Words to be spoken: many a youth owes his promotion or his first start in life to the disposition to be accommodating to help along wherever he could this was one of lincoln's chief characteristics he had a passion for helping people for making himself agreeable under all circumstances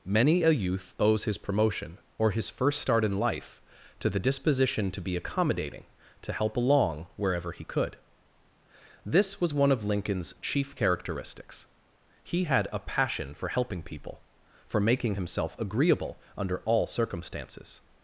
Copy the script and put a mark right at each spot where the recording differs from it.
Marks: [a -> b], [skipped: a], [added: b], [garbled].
many a youth owes his promotion or his first start in life to the disposition to be accommodating to help along wherever he could this was one of lincoln's chief characteristics he had a passion for helping people for making himself agreeable under all circumstances